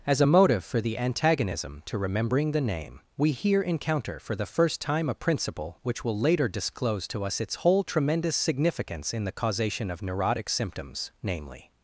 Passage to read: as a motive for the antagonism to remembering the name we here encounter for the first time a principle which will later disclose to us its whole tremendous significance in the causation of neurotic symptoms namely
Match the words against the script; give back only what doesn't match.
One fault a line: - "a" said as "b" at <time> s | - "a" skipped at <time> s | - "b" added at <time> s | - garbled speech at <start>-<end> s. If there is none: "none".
none